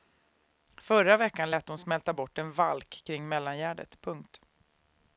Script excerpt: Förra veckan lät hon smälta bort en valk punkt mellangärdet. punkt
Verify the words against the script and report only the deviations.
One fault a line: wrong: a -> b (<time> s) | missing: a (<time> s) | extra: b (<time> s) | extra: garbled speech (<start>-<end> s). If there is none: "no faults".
wrong: punkt -> kring (3.0 s)